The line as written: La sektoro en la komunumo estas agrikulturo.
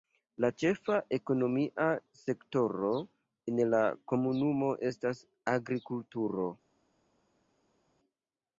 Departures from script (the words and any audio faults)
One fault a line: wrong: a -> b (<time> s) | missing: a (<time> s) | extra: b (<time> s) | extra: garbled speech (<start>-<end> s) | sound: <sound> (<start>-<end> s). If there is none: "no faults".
extra: ĉefa ekonomia (0.6 s)